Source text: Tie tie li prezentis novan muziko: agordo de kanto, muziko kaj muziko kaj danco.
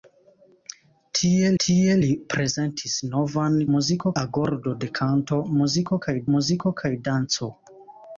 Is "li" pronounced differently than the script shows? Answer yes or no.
no